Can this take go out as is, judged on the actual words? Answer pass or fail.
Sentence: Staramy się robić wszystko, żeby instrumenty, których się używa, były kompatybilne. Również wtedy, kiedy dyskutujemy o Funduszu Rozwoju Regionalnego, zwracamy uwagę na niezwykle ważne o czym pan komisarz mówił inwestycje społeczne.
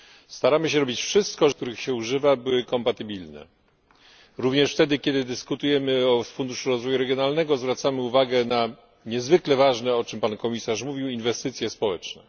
fail